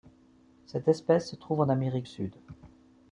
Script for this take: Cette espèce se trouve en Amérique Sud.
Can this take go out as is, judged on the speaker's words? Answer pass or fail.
pass